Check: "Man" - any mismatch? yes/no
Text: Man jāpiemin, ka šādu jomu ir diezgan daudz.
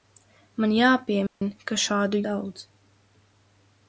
no